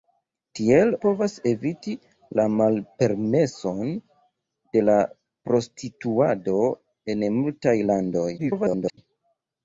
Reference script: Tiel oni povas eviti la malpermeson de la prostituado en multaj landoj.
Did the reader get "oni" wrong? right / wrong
wrong